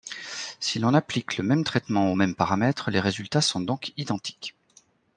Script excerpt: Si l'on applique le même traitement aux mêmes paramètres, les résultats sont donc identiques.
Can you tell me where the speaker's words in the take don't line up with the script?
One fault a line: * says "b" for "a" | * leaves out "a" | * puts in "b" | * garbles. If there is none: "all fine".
all fine